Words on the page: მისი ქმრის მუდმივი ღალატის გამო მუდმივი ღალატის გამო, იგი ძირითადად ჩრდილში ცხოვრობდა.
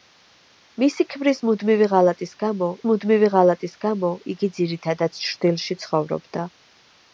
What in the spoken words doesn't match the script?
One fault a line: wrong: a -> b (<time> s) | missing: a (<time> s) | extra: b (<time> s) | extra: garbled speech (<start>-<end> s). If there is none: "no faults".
no faults